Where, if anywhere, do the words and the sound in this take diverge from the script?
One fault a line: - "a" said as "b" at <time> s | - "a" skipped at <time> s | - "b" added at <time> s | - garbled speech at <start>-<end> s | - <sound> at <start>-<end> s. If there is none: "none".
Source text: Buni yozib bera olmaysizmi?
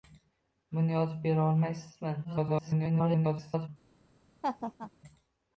- garbled speech at 2.2-3.7 s
- laugh at 4.4-4.9 s